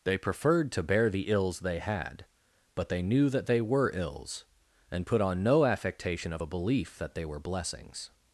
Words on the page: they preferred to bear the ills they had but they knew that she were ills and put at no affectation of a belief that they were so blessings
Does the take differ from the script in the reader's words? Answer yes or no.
yes